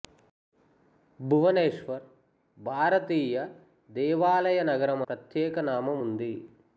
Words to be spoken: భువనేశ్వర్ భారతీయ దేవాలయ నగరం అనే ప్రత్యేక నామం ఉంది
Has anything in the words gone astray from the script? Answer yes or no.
yes